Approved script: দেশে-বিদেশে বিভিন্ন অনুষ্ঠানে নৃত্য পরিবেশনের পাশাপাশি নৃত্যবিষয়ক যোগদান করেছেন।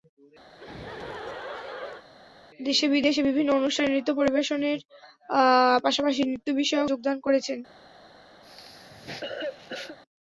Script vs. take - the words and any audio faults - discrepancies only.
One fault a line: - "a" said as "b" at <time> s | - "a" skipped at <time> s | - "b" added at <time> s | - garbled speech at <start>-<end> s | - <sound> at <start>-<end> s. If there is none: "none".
- laugh at 0.5-2.0 s
- cough at 8.4-10.0 s